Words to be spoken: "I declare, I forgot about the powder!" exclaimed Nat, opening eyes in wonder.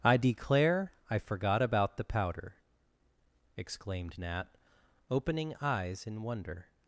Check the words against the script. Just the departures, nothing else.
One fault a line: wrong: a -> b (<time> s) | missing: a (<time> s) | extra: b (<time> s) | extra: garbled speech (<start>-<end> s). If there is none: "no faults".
no faults